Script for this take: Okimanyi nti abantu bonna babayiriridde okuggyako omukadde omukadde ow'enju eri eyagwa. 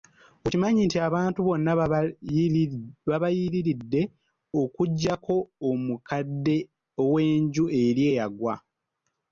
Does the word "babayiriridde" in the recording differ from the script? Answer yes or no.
no